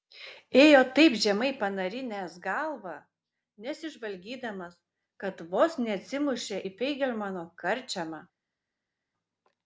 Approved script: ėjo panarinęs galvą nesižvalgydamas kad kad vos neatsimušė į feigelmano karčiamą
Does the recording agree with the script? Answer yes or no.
no